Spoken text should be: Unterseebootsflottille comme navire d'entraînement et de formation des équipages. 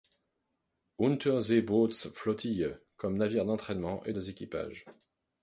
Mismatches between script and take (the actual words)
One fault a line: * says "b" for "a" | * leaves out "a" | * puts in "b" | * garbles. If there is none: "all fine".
* leaves out "de formation"